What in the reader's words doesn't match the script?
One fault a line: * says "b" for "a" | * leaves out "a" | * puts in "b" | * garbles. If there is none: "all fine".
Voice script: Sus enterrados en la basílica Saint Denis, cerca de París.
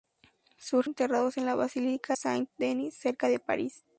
all fine